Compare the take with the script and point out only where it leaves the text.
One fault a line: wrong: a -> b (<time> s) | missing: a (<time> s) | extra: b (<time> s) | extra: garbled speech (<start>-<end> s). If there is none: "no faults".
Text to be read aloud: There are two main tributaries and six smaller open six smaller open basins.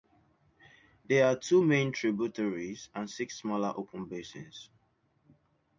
missing: six smaller open (4.1 s)